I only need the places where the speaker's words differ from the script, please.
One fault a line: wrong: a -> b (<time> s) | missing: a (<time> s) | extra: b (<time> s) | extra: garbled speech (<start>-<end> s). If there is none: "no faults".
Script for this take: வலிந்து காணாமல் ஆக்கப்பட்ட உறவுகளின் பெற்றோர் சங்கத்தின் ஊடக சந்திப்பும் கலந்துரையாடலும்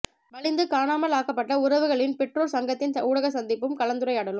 no faults